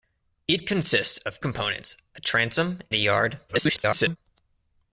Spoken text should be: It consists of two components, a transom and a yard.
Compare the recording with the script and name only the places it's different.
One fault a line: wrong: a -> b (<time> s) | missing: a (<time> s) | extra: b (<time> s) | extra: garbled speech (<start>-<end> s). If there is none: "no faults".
missing: two (1.4 s)
missing: and (2.8 s)
extra: garbled speech (3.5-4.2 s)